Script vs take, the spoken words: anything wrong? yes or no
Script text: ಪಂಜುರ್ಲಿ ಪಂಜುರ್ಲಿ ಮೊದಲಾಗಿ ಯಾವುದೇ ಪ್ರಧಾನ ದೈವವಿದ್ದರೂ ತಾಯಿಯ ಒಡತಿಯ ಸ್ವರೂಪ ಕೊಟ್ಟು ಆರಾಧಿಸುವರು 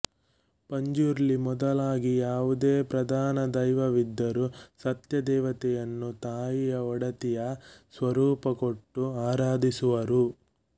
yes